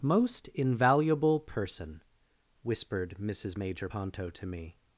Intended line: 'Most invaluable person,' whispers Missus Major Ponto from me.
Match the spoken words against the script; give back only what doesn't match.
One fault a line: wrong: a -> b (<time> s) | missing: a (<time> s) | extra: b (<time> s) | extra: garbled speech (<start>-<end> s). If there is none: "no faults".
wrong: whispers -> whispered (2.6 s)
wrong: from -> to (4.3 s)